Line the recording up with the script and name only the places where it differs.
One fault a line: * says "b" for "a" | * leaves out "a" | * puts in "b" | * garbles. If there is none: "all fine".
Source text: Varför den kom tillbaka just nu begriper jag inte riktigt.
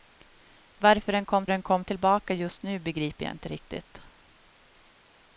* puts in "den kom"